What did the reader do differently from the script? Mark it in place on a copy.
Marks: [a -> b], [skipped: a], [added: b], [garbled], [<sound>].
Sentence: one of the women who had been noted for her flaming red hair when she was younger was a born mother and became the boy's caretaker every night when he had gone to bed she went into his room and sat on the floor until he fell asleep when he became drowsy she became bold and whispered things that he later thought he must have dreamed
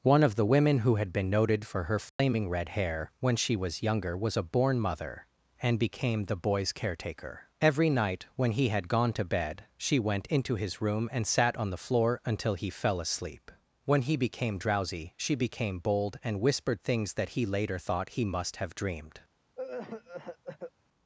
one of the women who had been noted for her flaming [dropout] red hair when she was younger was a born mother and became the boy's caretaker every night when he had gone to bed she went into his room and sat on the floor until he fell asleep when he became drowsy she became bold and whispered things that he later thought he must have dreamed [cough]